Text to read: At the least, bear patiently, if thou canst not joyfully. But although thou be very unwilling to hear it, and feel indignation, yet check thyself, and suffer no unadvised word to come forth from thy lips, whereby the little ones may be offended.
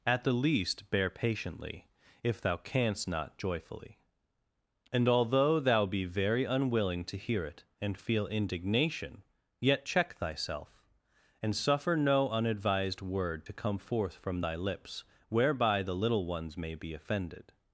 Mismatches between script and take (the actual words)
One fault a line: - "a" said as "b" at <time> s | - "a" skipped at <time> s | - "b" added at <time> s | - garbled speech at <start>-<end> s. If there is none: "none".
- "But" said as "And" at 4.9 s